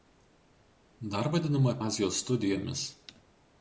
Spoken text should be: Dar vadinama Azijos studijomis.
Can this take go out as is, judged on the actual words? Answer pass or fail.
pass